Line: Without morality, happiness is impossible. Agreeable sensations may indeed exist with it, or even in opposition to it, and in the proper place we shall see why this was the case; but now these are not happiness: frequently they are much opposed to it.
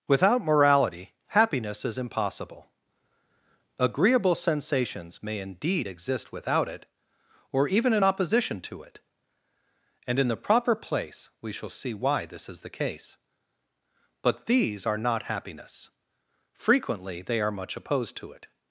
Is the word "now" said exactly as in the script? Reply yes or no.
no